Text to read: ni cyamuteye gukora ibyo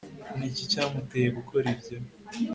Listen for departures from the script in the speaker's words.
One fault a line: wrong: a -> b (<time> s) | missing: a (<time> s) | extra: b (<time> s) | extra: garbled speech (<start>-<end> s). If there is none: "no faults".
extra: iki (0.5 s)